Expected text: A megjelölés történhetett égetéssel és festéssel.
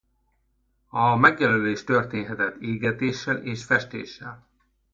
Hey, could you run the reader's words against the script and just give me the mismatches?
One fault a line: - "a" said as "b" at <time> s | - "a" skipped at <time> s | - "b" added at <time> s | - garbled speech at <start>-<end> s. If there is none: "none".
none